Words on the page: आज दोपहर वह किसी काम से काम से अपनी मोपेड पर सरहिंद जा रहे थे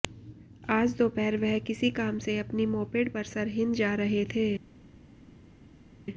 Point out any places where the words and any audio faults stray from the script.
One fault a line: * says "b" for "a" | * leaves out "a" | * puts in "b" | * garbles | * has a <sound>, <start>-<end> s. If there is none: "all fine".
* leaves out "काम से"